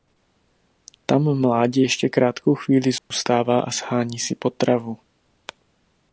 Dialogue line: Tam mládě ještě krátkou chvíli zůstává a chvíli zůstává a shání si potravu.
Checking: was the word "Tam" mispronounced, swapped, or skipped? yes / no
no